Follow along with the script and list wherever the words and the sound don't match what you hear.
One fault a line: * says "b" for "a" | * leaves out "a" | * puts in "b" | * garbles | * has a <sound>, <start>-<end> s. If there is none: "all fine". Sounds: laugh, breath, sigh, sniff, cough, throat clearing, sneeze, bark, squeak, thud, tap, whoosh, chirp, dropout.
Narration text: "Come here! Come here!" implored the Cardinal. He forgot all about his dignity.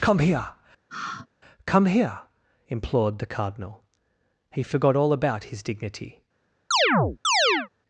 * has a sigh, 0.9-1.3 s
* has a chirp, 6.7-7.7 s